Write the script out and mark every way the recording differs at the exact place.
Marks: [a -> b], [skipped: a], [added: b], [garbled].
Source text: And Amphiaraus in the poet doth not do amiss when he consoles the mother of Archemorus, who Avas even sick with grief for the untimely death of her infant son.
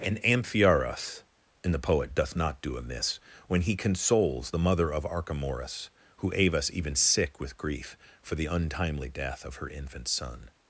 And Amphiaraus in the poet doth not do amiss when he consoles the mother of Archemorus, who Avas even sick with grief for the untimely death of her infant son.